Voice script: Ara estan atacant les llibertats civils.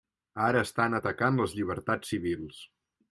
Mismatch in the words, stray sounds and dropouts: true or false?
false